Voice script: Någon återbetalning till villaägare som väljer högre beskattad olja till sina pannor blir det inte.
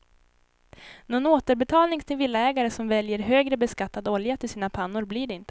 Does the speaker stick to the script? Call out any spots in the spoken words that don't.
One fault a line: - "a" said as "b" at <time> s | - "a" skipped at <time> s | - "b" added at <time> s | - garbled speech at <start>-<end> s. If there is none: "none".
none